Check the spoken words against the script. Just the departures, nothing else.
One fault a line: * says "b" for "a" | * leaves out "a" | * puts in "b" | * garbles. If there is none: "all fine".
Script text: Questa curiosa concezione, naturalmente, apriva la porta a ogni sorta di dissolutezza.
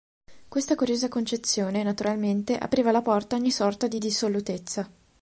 all fine